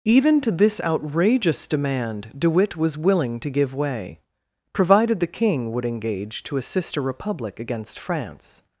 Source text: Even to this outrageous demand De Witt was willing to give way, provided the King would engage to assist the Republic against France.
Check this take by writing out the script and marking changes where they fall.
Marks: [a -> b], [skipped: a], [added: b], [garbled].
Even to this outrageous demand De Witt was willing to give way, provided the King would engage to assist [the -> a] Republic against France.